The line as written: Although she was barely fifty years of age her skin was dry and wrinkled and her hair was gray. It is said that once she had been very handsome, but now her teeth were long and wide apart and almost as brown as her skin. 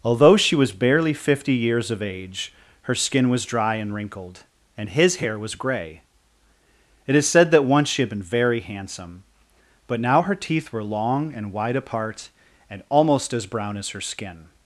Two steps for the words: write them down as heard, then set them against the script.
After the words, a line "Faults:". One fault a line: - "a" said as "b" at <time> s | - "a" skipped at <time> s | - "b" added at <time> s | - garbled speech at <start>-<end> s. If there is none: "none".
Although she was barely fifty years of age her skin was dry and wrinkled and his hair was gray. It is said that once she had been very handsome, but now her teeth were long and wide apart and almost as brown as her skin.
Faults:
- "her" said as "his" at 4.9 s